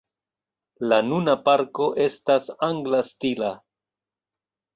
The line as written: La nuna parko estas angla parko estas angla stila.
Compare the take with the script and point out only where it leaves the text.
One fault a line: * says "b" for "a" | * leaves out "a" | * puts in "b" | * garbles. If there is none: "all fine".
* leaves out "parko estas angla"